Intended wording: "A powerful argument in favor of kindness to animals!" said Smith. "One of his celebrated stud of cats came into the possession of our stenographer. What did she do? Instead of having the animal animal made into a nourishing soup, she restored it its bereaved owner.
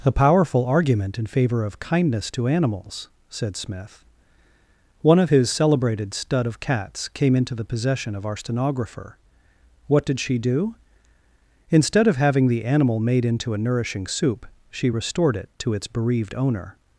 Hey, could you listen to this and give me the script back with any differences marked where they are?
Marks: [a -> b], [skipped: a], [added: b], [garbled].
"A powerful argument in favor of kindness to animals!" said Smith. "One of his celebrated stud of cats came into the possession of our stenographer. What did she do? Instead of having the animal [skipped: animal] made into a nourishing soup, she restored it [added: to] its bereaved owner.